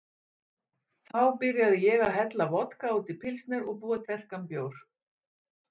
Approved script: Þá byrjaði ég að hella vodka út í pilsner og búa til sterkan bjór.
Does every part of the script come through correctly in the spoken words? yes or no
no